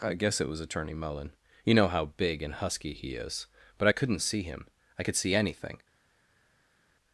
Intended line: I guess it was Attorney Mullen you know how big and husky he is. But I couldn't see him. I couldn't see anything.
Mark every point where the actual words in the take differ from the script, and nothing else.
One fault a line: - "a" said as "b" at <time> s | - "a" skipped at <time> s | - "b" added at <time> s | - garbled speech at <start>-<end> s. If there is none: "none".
- "couldn't" said as "could" at 5.0 s